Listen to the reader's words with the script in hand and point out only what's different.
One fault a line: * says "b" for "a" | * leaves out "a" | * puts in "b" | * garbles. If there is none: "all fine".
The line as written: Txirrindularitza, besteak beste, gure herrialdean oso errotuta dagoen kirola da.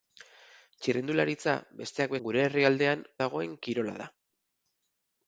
* leaves out "beste"
* leaves out "oso errotuta"